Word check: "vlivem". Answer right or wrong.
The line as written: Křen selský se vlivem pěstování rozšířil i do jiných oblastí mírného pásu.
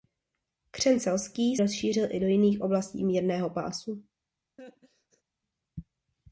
wrong